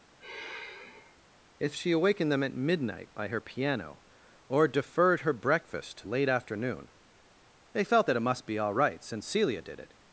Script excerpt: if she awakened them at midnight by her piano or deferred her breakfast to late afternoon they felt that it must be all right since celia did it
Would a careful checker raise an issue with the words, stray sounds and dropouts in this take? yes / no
yes